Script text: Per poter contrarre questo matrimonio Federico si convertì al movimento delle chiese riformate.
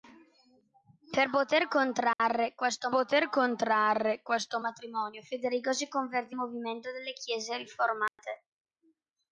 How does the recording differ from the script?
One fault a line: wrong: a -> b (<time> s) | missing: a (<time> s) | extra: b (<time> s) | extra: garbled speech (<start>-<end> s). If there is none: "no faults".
extra: poter contrarre questo (2.9 s)
missing: al (6.4 s)